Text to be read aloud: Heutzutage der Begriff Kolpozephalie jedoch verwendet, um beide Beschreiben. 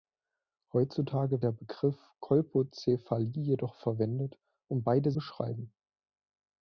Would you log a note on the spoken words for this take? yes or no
no